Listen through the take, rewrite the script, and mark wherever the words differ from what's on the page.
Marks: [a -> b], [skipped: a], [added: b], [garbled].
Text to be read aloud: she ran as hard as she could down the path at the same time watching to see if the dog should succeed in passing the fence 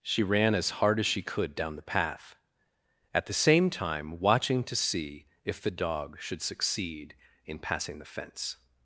she ran as hard as she could down the path at the same time watching to see if the dog should succeed in passing the fence